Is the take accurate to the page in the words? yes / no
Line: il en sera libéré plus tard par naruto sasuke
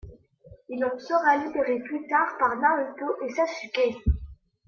no